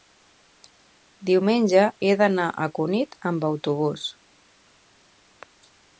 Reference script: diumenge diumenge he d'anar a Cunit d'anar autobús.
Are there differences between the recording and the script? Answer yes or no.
yes